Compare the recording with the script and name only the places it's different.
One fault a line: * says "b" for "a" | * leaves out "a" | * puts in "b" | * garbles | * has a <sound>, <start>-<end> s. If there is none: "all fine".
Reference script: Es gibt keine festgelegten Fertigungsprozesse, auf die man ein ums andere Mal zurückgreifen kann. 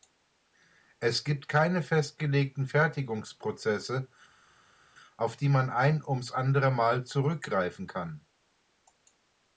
all fine